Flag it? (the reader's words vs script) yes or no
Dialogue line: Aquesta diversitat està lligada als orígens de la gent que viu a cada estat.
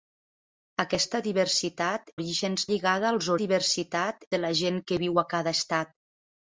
yes